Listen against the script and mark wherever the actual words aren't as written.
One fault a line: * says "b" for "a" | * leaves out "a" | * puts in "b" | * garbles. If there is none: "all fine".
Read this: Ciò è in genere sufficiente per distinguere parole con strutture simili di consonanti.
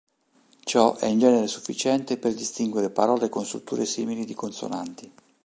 all fine